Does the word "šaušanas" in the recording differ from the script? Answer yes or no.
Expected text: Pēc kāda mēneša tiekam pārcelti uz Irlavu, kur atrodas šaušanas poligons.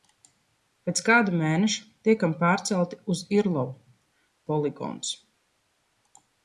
yes